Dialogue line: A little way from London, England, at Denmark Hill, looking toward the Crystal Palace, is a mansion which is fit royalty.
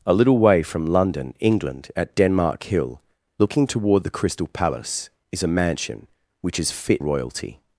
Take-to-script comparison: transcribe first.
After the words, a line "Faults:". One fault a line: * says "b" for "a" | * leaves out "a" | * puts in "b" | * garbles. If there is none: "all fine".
A little way from London, England, at Denmark Hill, looking toward the Crystal Palace, is a mansion which is fit royalty.
Faults:
all fine